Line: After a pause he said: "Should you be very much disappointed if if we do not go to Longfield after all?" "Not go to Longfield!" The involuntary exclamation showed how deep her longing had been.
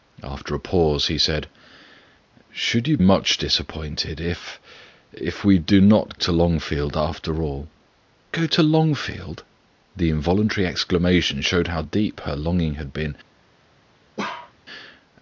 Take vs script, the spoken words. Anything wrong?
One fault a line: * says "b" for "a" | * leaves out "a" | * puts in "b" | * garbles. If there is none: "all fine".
* leaves out "be very"
* leaves out "go"
* leaves out "Not"